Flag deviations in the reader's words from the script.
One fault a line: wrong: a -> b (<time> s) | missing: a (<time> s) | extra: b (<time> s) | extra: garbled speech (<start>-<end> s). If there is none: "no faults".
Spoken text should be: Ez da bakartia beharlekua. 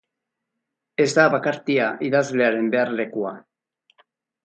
extra: idazlearen (2.1 s)